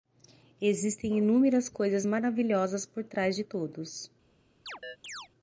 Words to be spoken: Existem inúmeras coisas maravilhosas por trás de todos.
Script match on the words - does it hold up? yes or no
yes